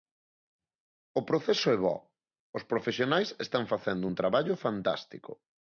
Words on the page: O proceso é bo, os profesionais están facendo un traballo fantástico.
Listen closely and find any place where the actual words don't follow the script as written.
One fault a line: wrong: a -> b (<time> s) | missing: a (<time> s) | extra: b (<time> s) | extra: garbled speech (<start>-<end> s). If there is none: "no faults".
no faults